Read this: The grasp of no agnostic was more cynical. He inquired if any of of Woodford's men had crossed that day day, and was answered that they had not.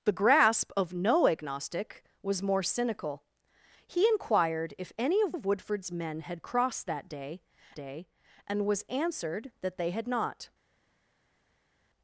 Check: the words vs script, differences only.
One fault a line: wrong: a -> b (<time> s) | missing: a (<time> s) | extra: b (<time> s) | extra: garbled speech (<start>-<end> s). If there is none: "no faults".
no faults